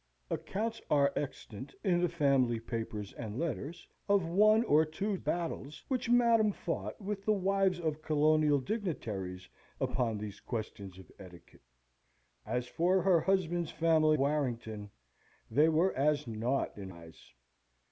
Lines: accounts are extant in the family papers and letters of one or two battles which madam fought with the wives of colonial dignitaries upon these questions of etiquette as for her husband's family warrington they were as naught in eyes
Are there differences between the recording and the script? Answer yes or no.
no